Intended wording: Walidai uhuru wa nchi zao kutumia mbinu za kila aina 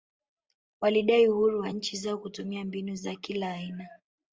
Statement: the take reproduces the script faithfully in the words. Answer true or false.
true